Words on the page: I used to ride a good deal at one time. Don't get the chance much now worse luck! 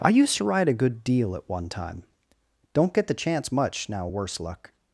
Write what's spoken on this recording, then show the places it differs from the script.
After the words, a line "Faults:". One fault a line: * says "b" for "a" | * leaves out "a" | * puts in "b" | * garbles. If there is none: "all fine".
I used to ride a good deal at one time. Don't get the chance much now worse luck!
Faults:
all fine